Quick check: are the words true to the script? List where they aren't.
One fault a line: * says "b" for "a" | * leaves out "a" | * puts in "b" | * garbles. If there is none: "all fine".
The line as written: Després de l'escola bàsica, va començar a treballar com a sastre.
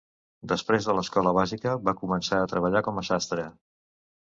all fine